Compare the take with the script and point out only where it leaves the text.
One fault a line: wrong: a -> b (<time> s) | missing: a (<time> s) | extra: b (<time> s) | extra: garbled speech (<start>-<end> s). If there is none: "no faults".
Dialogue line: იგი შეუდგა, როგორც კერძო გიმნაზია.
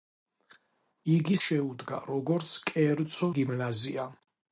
no faults